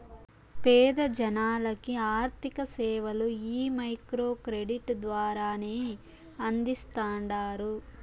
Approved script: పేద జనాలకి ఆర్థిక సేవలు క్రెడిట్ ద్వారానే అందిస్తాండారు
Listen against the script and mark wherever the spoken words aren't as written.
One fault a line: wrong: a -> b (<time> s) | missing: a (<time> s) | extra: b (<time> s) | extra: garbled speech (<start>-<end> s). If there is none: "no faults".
extra: ఈ మైక్రో (3.5 s)